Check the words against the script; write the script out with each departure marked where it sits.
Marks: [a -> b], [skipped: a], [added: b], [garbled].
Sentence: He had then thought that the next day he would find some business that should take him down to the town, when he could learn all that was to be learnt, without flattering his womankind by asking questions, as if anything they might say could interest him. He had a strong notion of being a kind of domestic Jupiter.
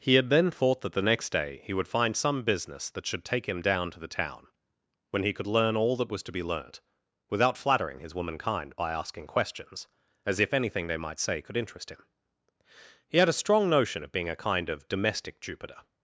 He had then thought that the next day he would find some business that should take him down to the town, when he could learn all that was to be learnt, without flattering his womankind by asking questions, as if anything they might say could interest him. He had a strong notion of being a kind of domestic Jupiter.